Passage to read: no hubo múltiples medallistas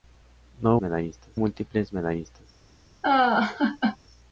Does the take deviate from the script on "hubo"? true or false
true